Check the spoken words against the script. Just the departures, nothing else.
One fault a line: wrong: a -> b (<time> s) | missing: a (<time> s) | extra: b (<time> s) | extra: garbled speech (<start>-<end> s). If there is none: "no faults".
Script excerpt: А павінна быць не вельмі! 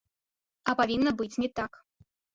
wrong: вельмі -> так (1.6 s)